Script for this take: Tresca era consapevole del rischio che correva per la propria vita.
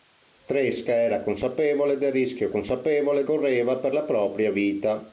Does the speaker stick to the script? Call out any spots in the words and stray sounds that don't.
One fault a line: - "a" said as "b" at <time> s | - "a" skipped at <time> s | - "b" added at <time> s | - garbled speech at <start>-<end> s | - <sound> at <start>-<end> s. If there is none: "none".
- "che" said as "consapevole" at 2.5 s